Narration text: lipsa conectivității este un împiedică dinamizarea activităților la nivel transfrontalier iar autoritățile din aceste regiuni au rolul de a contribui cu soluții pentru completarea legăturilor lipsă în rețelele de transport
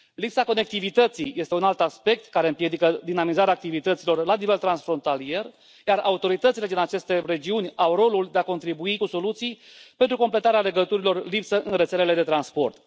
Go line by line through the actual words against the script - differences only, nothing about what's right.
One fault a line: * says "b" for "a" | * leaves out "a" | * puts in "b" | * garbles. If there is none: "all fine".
* puts in "alt aspect care"